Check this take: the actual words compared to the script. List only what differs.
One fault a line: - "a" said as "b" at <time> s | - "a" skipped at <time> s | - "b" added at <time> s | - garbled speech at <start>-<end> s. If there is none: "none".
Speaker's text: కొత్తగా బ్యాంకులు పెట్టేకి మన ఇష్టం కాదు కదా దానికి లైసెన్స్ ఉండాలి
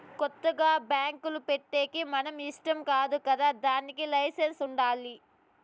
none